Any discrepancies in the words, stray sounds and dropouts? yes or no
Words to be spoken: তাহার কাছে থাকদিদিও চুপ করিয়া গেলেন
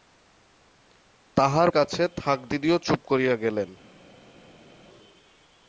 no